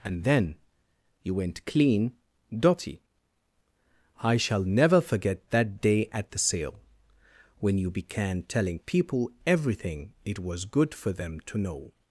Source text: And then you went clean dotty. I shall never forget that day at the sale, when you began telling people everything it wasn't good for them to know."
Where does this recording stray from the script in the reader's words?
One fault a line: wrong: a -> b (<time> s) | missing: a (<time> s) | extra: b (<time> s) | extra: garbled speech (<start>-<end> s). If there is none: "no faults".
wrong: wasn't -> was (10.4 s)